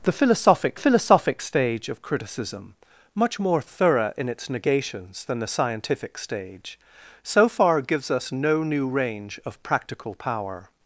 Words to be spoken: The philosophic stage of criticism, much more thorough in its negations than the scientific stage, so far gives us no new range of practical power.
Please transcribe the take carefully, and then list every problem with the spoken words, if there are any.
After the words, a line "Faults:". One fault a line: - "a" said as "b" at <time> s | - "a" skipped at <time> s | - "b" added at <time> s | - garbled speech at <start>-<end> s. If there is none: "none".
The philosophic philosophic stage of criticism, much more thorough in its negations than the scientific stage, so far gives us no new range of practical power.
Faults:
- "philosophic" added at 0.8 s